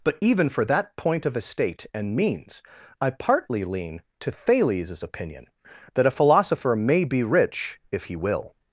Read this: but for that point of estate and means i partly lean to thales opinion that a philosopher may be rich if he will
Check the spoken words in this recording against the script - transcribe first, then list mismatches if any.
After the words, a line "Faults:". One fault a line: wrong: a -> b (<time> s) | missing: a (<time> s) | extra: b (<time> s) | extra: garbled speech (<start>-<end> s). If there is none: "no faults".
but even for that point of estate and means i partly lean to thales opinion that a philosopher may be rich if he will
Faults:
extra: even (0.2 s)